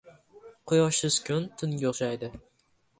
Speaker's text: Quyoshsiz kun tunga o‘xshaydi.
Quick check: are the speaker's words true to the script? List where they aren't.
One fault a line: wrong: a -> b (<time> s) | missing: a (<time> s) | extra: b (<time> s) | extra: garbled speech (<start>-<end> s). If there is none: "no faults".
no faults